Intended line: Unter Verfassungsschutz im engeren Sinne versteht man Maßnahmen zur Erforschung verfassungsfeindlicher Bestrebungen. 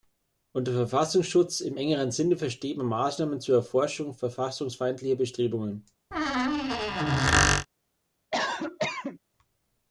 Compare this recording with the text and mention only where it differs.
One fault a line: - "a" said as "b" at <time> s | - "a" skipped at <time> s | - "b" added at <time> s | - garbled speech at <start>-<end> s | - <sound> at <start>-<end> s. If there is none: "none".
- squeak at 6.1-7.7 s
- cough at 8.3-9.2 s